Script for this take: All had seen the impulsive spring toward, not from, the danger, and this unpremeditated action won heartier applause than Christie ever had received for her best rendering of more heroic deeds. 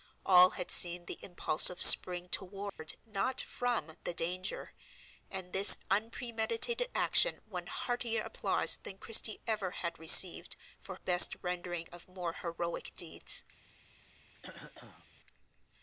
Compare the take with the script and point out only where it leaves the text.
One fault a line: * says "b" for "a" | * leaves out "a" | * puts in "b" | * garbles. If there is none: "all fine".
* leaves out "her"